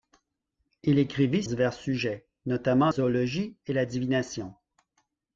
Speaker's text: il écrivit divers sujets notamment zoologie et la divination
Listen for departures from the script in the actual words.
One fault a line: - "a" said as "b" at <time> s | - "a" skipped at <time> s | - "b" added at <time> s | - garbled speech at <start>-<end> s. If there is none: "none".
none